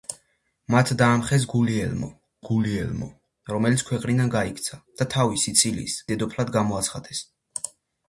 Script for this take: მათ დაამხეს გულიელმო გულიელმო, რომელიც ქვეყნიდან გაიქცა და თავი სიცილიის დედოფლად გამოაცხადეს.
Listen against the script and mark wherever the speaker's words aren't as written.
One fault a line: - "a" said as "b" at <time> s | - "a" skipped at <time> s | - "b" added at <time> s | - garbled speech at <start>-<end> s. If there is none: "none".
none